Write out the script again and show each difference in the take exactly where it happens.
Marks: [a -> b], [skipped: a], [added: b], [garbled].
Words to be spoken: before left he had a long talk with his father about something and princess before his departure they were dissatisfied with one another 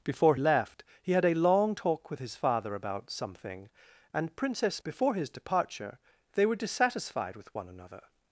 before left he had a long talk with his father about something and princess before his departure they were dissatisfied with one another